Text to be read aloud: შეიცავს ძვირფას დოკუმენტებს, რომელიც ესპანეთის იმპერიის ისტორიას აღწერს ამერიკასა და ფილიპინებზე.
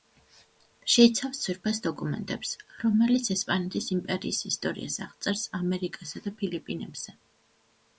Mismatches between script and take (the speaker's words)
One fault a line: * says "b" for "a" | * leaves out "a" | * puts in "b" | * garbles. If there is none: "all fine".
all fine